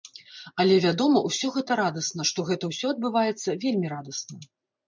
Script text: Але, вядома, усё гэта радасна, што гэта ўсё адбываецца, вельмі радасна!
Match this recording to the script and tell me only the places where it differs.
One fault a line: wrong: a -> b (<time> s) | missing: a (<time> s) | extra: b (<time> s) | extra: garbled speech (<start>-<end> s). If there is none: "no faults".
no faults